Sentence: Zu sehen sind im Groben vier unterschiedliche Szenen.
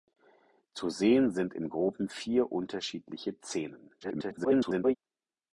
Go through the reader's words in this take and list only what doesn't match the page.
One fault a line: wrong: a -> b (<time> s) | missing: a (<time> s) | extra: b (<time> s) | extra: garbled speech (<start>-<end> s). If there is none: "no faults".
extra: garbled speech (4.0-5.0 s)